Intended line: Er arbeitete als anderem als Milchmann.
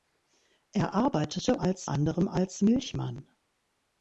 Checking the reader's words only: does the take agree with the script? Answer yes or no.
yes